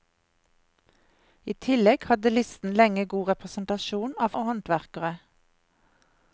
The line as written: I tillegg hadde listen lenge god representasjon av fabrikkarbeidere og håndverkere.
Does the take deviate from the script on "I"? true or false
false